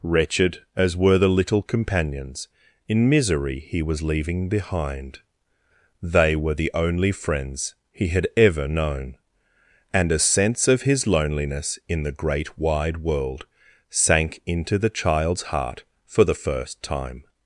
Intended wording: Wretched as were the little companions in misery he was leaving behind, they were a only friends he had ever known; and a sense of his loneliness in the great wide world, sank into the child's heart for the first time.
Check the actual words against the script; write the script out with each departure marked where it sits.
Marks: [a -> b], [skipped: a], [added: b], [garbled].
Wretched as were the little companions in misery he was leaving behind, they were [a -> the] only friends he had ever known; and a sense of his loneliness in the great wide world, sank into the child's heart for the first time.